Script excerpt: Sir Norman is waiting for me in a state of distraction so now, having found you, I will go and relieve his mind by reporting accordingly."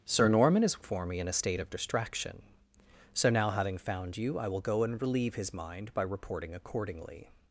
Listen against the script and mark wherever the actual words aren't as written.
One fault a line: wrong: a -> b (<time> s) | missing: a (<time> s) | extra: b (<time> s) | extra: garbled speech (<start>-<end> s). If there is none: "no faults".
missing: waiting (0.8 s)